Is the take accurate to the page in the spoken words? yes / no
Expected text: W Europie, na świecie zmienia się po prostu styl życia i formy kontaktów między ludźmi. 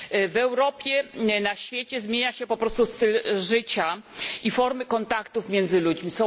yes